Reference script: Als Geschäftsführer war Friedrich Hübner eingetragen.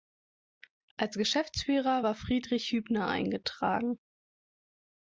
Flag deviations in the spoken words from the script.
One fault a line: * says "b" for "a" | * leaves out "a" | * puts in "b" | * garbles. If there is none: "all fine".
all fine